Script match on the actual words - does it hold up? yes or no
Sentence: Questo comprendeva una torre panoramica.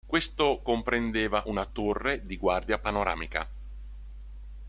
no